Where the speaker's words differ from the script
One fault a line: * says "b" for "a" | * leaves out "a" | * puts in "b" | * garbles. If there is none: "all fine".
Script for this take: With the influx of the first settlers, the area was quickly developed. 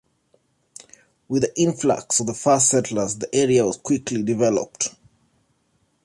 all fine